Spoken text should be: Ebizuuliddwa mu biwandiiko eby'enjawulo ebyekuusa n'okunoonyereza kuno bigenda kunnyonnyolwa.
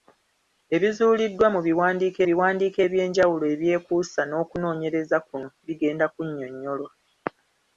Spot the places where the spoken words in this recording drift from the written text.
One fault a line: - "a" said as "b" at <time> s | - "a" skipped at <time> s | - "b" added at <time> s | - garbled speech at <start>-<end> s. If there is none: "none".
- "biwandiiko" added at 2.3 s